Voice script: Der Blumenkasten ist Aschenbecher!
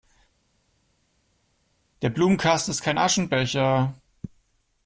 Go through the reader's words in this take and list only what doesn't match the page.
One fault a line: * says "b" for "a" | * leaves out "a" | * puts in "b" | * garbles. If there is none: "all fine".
* puts in "kein"